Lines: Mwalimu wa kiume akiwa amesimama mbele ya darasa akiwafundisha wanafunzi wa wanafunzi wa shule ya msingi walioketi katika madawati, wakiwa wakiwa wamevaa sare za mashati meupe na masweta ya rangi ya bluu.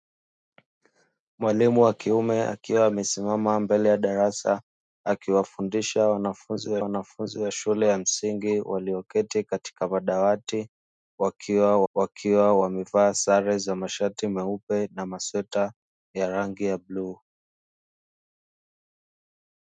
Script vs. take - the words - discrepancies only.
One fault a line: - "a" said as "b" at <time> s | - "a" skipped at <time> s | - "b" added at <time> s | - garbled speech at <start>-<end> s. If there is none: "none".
none